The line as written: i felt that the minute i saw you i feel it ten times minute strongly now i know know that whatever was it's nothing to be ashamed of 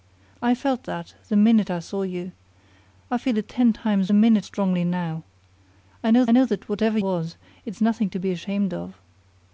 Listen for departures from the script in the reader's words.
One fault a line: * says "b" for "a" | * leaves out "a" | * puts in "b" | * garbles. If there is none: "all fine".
all fine